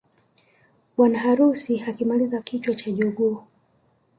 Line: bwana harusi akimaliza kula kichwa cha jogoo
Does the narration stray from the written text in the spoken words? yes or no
yes